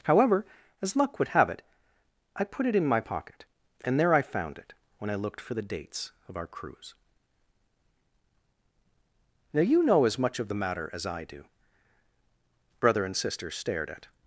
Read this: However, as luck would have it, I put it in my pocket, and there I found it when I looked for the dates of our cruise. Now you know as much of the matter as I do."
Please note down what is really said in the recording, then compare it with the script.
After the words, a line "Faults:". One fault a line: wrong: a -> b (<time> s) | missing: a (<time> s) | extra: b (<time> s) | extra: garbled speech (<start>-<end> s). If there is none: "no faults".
However, as luck would have it, I put it in my pocket, and there I found it when I looked for the dates of our cruise. Now you know as much of the matter as I do." Brother and sister stared at
Faults:
extra: Brother and sister stared at (12.8 s)